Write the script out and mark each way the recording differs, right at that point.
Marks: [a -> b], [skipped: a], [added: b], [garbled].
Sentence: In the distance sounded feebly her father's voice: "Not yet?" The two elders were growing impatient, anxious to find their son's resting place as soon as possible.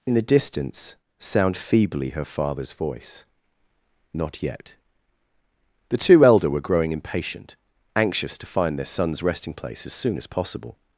In the distance [sounded -> sound] feebly her father's voice: "Not yet?" The two [elders -> elder] were growing impatient, anxious to find their son's resting place as soon as possible.